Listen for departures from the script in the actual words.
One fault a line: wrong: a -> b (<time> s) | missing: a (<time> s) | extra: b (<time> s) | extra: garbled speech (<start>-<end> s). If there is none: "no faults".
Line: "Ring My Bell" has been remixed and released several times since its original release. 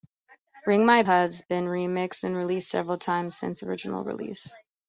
missing: Bell (1.0 s)
missing: its (3.6 s)